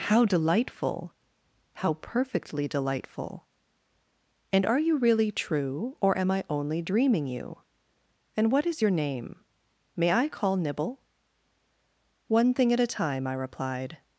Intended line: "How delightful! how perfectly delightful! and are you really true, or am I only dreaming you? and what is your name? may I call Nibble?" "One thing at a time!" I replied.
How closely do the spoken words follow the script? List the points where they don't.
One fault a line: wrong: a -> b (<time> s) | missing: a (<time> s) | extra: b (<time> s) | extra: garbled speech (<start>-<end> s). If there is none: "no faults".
no faults